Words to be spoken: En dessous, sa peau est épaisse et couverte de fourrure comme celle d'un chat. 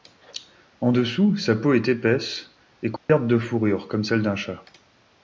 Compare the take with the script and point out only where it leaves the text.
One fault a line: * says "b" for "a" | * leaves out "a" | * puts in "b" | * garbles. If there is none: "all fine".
all fine